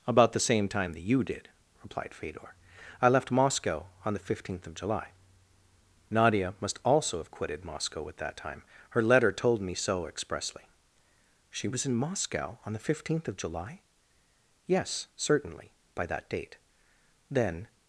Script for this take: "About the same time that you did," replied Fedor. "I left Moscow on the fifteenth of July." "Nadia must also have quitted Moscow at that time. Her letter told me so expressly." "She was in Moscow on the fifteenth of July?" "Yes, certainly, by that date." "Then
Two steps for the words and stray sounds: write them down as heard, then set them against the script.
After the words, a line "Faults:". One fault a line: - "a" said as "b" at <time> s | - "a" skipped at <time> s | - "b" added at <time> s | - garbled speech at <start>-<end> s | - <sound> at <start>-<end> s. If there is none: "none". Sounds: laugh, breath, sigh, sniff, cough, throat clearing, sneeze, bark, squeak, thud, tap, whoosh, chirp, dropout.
"About the same time that you did," replied Fedor. "I left Moscow on the fifteenth of July." "Nadia must also have quitted Moscow at that time. Her letter told me so expressly." "She was in Moscow on the fifteenth of July?" "Yes, certainly, by that date." "Then
Faults:
none